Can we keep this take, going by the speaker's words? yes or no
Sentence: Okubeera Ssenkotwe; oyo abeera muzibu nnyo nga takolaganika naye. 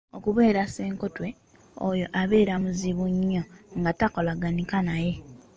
yes